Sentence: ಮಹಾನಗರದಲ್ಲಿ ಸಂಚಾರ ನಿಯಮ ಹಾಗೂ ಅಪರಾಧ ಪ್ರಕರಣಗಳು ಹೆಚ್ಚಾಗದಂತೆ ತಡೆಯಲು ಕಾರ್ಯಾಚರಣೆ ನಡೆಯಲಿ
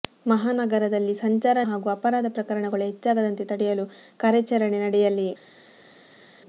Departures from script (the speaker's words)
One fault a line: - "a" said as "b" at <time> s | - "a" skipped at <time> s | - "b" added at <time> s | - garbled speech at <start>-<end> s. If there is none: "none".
- "ನಿಯಮ" skipped at 1.6 s